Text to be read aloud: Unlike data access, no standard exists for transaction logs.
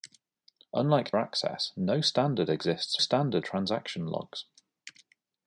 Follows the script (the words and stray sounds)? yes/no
no